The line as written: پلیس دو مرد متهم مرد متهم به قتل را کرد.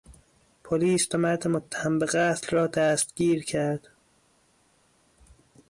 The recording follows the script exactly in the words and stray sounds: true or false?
false